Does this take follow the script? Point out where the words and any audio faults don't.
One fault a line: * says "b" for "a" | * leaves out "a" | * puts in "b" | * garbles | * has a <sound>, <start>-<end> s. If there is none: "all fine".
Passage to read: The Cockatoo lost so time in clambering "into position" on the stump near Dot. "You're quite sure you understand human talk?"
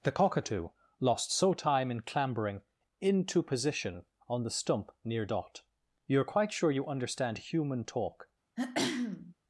* has a throat clearing, 8.6-9.3 s